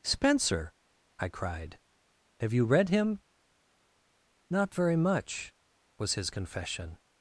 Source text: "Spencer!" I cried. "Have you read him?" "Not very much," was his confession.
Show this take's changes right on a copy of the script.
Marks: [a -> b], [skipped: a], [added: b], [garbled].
"Spencer!" I cried. "Have you read him?" "Not very much," was his confession.